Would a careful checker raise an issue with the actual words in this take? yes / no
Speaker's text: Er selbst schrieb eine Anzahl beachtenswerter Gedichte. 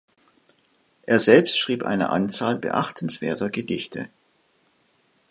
no